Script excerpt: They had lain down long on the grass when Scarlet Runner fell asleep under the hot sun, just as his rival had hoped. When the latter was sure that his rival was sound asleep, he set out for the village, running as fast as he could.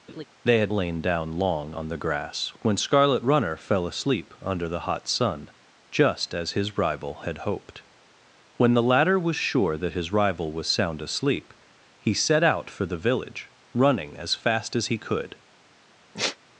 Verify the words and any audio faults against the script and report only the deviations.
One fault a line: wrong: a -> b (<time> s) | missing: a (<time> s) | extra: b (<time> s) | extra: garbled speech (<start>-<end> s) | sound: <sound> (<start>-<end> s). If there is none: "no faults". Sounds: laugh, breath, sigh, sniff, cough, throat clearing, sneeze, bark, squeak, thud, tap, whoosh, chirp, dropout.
sound: laugh (0.1-0.2 s)
sound: sigh (16.1-16.4 s)